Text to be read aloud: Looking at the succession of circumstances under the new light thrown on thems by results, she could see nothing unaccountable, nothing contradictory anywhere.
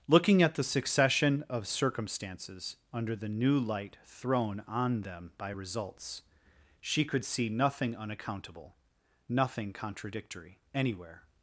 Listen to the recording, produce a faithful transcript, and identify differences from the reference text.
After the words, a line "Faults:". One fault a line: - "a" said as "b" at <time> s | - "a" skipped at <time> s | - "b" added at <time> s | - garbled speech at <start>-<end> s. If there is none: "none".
Looking at the succession of circumstances under the new light thrown on them by results, she could see nothing unaccountable, nothing contradictory anywhere.
Faults:
- "thems" said as "them" at 5.0 s